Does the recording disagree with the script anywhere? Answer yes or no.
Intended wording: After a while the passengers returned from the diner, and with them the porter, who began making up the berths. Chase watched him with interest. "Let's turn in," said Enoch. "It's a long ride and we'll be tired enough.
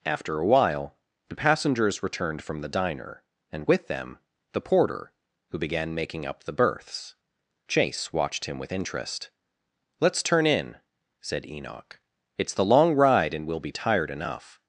yes